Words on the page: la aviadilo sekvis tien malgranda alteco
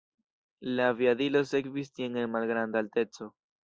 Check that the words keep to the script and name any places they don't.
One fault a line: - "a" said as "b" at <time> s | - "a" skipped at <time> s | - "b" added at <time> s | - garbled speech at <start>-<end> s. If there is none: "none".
- "en" added at 2.2 s